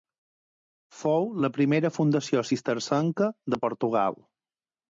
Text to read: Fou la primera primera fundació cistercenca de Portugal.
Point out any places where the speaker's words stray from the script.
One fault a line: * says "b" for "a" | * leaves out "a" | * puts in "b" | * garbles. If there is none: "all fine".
* leaves out "primera"